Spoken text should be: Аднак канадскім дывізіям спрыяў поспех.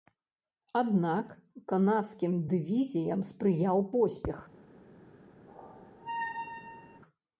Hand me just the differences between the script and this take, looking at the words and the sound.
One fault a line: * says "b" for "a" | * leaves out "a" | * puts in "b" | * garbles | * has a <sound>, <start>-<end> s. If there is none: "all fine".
* has a squeak, 5.5-7.0 s